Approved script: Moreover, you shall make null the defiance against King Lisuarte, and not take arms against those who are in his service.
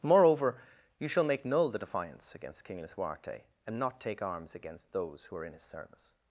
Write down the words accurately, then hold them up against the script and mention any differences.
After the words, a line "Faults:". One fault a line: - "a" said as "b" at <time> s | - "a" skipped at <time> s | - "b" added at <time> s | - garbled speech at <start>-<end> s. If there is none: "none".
Moreover, you shall make null the defiance against King Lisuarte, and not take arms against those who are in his service.
Faults:
none